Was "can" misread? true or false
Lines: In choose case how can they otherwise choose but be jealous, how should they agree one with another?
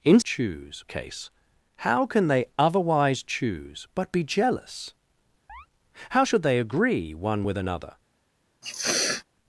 false